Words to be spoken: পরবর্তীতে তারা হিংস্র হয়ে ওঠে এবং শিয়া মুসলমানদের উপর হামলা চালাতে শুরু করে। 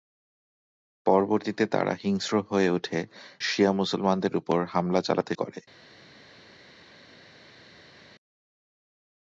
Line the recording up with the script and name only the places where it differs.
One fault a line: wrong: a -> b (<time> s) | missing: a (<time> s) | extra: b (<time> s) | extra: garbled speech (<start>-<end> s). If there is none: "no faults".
missing: এবং (3.0 s)
missing: শুরু (5.3 s)